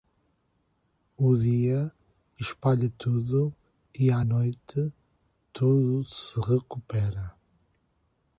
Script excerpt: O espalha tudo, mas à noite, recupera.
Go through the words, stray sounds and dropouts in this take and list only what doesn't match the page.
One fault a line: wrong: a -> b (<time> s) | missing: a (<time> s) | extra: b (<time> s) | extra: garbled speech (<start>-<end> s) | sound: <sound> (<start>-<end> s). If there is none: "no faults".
extra: dia (1.4 s)
wrong: mas -> e (3.9 s)
extra: tudo se (5.5 s)